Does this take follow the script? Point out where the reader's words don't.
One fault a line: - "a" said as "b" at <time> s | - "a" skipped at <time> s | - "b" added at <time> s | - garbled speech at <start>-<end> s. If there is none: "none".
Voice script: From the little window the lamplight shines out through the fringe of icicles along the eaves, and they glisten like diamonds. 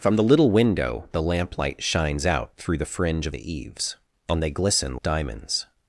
- "icicles along" skipped at 3.4 s
- "like" skipped at 5.0 s